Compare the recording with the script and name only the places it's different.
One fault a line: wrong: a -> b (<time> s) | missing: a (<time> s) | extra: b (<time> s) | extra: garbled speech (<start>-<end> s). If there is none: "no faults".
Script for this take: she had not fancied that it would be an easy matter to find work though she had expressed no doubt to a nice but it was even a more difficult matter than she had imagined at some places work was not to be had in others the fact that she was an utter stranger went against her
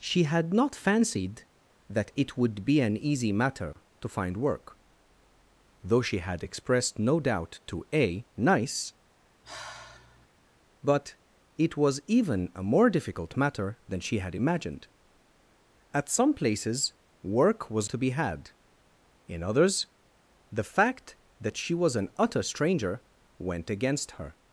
missing: not (17.9 s)